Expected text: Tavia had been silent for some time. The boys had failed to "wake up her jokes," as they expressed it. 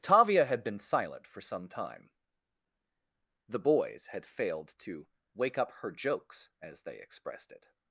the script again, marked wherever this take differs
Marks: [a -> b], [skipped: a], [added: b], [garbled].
Tavia had been silent for some time. The boys had failed to "wake up her jokes," as they expressed it.